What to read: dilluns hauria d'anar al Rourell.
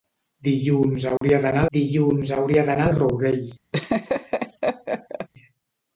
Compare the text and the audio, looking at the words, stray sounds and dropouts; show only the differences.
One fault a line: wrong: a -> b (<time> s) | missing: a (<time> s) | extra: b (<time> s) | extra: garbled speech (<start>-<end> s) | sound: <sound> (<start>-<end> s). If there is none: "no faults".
sound: dropout (1.2-1.2 s)
extra: dilluns hauria d'anar (1.8 s)
sound: laugh (3.7-5.3 s)